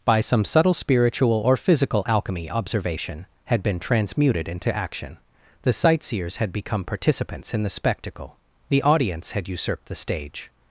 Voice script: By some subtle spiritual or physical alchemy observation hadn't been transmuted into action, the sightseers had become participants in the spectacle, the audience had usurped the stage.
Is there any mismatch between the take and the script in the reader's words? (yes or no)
yes